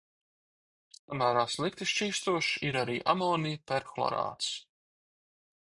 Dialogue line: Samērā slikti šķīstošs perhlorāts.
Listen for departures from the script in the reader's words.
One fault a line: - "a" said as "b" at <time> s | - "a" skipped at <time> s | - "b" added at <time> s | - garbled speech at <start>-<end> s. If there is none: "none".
- "ir arī amonija" added at 2.7 s